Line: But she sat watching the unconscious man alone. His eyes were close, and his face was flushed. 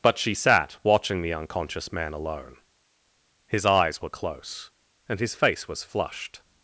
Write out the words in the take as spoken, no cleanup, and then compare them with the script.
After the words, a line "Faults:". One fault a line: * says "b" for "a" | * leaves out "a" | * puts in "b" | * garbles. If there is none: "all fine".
But she sat watching the unconscious man alone. His eyes were close, and his face was flushed.
Faults:
all fine